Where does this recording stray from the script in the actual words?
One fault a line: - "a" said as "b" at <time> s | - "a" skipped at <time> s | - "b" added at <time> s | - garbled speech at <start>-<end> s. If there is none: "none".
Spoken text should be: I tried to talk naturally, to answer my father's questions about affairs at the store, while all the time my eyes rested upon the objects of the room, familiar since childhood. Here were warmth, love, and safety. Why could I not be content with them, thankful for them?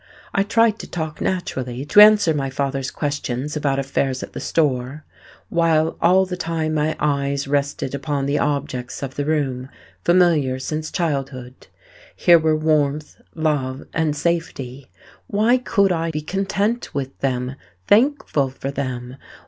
- "not" skipped at 16.1 s